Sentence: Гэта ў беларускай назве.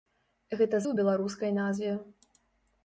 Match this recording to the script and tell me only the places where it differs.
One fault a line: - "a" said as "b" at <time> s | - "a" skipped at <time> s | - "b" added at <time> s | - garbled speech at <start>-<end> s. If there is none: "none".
none